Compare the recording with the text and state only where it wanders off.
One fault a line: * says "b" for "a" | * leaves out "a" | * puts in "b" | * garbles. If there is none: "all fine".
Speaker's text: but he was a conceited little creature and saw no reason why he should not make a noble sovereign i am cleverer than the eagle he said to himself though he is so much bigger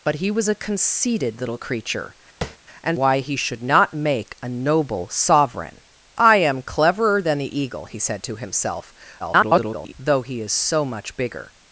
* leaves out "saw no reason"
* garbles